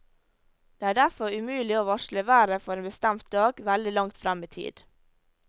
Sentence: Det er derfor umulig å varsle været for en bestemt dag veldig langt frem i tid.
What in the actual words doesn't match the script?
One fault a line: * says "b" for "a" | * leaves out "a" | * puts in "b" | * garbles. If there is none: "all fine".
all fine